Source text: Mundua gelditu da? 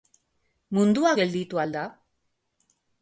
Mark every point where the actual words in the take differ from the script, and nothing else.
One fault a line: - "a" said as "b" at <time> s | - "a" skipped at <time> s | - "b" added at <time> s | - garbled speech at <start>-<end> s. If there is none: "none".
- "al" added at 1.6 s